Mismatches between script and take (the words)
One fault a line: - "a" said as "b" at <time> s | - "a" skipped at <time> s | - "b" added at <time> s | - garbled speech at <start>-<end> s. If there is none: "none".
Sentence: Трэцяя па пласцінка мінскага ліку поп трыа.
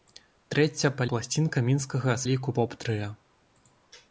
none